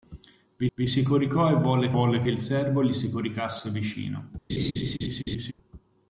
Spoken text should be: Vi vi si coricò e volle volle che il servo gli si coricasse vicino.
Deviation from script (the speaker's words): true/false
false